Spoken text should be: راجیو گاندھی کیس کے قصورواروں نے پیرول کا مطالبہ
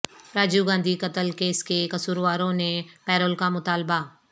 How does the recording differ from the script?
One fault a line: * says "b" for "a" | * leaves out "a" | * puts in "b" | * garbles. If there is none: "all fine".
* puts in "قتل"